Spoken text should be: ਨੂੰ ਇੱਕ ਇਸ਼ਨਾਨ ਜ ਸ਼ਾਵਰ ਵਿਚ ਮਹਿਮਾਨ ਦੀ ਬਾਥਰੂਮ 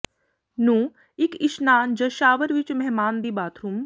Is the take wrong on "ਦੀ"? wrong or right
right